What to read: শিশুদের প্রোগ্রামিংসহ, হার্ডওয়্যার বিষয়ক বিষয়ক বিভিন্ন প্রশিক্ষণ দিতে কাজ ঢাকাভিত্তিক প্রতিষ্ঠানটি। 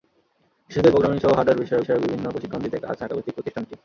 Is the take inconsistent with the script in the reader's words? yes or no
no